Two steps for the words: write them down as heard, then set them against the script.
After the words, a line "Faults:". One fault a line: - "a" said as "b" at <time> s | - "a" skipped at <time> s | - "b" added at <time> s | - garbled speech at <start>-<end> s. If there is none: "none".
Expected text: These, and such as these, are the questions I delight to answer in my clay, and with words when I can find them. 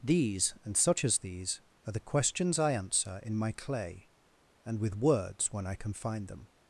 These, and such as these, are the questions I answer in my clay, and with words when I can find them.
Faults:
- "delight to" skipped at 2.7 s